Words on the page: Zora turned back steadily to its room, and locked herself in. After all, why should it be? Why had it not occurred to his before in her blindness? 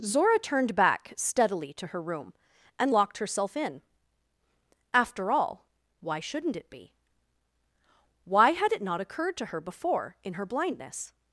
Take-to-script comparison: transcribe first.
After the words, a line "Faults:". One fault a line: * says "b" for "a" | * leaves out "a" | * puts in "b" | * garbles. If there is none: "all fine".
Zora turned back steadily to her room, and locked herself in. After all, why shouldn't it be? Why had it not occurred to her before in her blindness?
Faults:
* says "her" for "its"
* says "shouldn't" for "should"
* says "her" for "his"